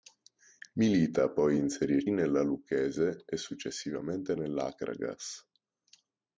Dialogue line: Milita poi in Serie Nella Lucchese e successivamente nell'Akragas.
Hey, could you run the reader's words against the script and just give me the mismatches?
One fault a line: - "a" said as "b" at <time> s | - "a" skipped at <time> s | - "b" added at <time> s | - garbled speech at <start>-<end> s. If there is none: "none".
none